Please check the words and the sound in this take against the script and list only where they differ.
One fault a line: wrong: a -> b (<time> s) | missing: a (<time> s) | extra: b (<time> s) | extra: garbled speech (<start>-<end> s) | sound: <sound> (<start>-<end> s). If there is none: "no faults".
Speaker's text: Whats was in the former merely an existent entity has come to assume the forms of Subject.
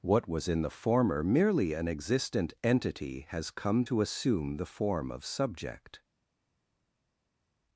wrong: Whats -> What (0.0 s)
wrong: forms -> form (4.7 s)